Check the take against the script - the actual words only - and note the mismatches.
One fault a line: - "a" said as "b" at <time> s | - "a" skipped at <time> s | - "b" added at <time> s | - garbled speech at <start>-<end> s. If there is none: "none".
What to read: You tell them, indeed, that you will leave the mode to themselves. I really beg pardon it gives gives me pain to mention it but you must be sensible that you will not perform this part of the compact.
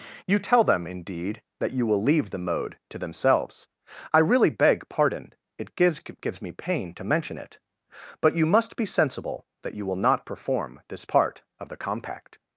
none